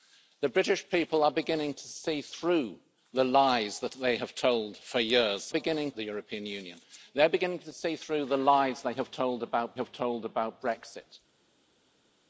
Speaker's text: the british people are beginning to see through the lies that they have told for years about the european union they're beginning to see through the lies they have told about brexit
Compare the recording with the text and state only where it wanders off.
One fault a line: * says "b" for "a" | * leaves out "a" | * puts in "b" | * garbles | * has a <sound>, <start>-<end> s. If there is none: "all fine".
* says "beginning" for "about"
* puts in "have told about"